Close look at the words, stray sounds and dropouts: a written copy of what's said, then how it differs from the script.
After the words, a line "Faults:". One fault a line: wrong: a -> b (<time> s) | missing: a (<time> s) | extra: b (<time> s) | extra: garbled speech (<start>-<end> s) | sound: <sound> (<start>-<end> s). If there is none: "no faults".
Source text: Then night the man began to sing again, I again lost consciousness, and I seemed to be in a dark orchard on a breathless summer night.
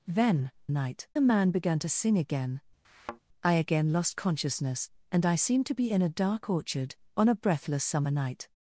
Then night the man began to sing again, I again lost consciousness, and I seemed to be in a dark orchard on a breathless summer night.
Faults:
sound: thud (2.8-3.2 s)